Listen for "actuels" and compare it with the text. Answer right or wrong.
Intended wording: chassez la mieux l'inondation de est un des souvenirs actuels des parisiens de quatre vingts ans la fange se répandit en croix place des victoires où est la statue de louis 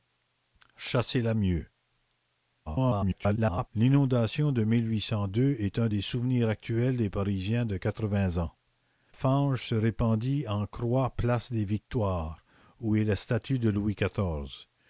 right